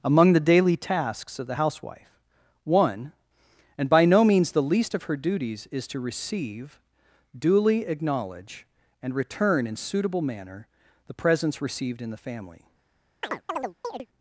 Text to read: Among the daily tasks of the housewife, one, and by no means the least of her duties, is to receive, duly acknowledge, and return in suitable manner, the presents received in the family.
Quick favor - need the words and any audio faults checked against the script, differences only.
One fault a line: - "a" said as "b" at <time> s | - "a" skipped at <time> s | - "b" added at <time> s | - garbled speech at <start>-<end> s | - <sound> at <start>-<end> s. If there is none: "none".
- chirp at 13.2-14.1 s